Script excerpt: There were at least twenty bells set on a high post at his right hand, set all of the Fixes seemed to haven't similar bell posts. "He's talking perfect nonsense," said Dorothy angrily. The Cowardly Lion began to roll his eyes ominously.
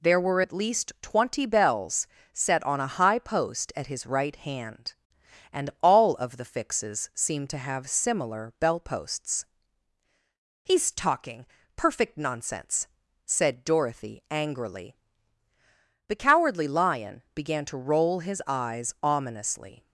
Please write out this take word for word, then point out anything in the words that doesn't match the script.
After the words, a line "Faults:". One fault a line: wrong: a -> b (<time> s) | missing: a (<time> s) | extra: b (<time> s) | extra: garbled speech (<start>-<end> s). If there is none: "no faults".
There were at least twenty bells set on a high post at his right hand, and all of the Fixes seemed to have similar bell posts. "He's talking perfect nonsense," said Dorothy angrily. The Cowardly Lion began to roll his eyes ominously.
Faults:
wrong: set -> and (5.5 s)
wrong: haven't -> have (7.6 s)